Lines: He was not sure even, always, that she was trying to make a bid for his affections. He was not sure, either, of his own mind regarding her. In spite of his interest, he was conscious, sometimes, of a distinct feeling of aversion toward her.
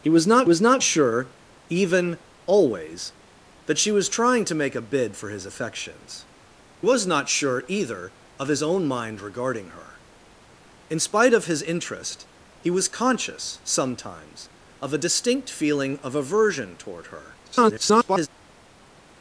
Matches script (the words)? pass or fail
fail